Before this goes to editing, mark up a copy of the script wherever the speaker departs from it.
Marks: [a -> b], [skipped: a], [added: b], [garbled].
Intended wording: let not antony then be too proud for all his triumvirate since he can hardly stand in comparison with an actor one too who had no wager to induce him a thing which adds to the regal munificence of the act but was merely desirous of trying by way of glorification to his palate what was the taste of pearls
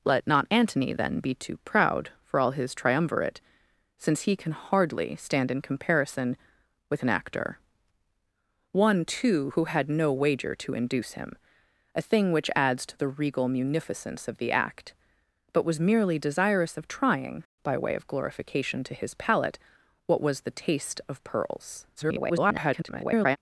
let not antony then be too proud for all his triumvirate since he can hardly stand in comparison with an actor one too who had no wager to induce him a thing which adds to the regal munificence of the act but was merely desirous of trying by way of glorification to his palate what was the taste of pearls [garbled]